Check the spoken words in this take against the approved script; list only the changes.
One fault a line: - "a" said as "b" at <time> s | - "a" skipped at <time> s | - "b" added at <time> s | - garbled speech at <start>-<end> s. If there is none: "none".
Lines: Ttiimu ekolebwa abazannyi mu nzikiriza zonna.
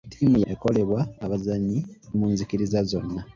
none